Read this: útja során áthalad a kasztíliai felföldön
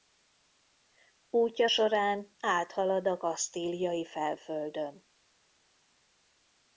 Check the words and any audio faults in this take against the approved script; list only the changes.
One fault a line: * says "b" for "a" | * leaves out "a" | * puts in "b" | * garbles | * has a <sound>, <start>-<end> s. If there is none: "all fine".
all fine